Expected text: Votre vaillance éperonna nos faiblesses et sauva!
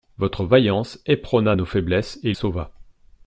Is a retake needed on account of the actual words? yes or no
no